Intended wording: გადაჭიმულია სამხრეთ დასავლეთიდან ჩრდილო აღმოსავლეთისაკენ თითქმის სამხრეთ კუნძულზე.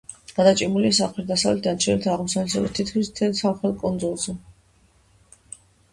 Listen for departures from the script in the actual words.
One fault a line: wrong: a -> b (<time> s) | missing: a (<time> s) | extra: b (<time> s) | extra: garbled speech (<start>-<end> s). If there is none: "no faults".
extra: მთელ (3.1 s)